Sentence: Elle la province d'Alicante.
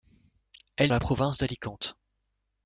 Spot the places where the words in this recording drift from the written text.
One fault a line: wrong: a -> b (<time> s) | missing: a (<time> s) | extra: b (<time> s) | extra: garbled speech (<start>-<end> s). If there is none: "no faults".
no faults